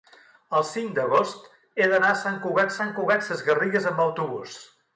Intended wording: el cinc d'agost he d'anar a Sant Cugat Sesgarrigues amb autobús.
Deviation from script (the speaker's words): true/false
true